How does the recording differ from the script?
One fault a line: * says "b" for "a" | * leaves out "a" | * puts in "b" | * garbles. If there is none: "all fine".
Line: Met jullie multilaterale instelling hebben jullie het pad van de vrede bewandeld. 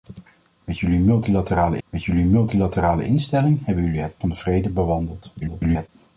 * puts in "met jullie multilaterale"
* leaves out "pad"
* garbles